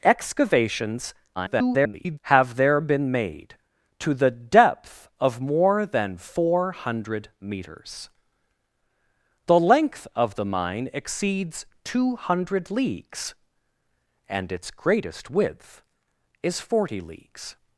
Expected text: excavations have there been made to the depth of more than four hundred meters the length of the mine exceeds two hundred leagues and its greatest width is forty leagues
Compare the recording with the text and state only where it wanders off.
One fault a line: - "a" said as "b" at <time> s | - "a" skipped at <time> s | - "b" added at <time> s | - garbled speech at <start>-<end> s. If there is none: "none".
- garbled speech at 1.4-2.2 s